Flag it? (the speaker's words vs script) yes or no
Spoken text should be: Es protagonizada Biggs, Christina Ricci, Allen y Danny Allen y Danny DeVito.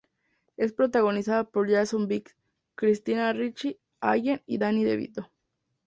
yes